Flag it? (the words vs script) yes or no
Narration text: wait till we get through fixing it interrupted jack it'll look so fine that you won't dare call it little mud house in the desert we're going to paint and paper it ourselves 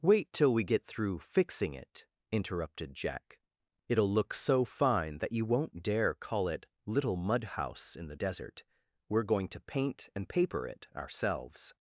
no